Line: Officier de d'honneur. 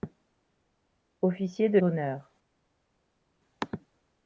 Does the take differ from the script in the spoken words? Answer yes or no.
no